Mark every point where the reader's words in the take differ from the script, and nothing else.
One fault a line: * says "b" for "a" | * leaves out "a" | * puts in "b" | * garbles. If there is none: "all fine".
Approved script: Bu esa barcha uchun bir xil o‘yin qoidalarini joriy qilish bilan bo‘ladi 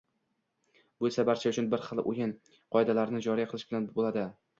all fine